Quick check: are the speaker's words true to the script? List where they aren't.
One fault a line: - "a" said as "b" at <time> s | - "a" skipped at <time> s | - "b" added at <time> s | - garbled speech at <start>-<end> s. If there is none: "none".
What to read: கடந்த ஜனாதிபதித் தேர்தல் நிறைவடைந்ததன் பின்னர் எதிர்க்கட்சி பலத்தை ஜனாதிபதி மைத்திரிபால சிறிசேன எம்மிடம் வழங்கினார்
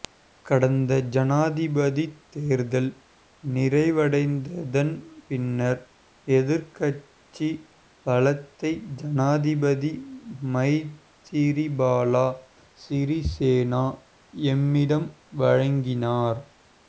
none